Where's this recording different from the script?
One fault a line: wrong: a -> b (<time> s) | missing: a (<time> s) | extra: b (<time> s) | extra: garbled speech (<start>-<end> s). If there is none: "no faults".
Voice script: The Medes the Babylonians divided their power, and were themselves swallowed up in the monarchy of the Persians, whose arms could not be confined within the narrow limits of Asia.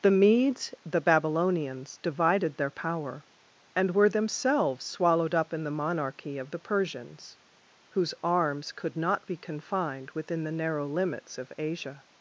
no faults